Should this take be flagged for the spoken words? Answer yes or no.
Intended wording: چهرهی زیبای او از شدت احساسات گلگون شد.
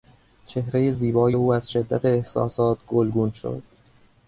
no